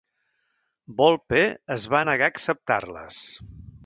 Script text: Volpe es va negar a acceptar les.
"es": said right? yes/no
yes